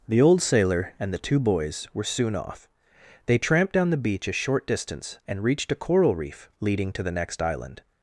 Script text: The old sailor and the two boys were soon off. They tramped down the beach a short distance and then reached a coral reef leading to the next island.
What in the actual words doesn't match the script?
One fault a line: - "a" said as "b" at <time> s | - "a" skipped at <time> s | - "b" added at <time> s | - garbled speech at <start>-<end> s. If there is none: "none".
- "then" skipped at 5.4 s